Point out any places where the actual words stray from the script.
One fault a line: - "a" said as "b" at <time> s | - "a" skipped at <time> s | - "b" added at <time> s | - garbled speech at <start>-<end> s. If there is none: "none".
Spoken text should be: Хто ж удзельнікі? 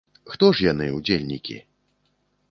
- "яны" added at 0.7 s